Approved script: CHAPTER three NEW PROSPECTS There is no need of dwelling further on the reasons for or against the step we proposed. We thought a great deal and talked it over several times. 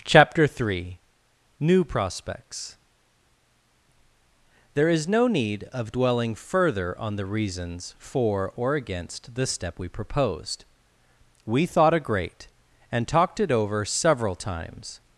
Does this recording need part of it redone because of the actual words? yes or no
yes